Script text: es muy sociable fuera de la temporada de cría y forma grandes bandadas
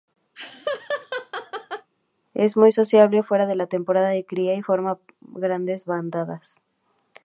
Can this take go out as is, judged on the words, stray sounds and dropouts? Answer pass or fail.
fail